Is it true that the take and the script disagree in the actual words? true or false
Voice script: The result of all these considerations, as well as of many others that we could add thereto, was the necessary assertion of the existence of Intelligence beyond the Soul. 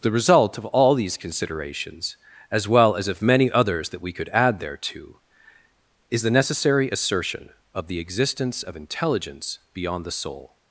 true